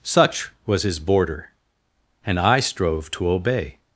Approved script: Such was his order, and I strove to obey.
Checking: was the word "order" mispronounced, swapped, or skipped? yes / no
yes